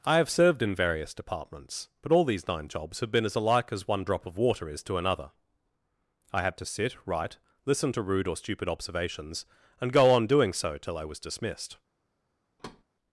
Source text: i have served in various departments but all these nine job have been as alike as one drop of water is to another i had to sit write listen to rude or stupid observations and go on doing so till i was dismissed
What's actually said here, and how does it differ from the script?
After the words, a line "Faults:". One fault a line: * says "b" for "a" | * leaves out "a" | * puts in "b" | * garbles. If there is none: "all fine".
i have served in various departments but all these nine jobs have been as alike as one drop of water is to another i had to sit write listen to rude or stupid observations and go on doing so till i was dismissed
Faults:
* says "jobs" for "job"